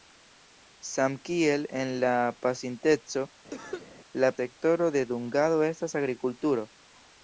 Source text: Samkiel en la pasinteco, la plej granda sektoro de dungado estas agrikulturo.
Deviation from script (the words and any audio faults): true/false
true